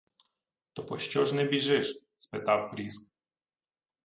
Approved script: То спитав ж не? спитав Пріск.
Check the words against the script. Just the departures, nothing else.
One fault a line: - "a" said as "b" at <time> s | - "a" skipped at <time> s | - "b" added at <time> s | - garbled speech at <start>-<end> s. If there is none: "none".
- "спитав" said as "пощо" at 0.9 s
- "біжиш" added at 1.4 s